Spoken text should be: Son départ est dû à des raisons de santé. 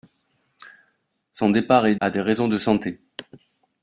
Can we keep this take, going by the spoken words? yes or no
no